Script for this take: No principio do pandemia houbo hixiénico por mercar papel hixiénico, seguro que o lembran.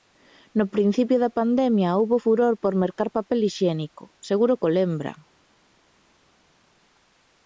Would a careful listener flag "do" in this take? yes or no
yes